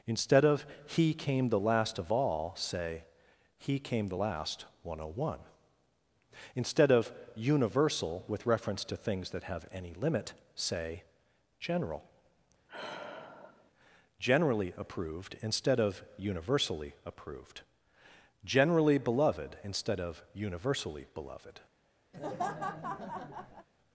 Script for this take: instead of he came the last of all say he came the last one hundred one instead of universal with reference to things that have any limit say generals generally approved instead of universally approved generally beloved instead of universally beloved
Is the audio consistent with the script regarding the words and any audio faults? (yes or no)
no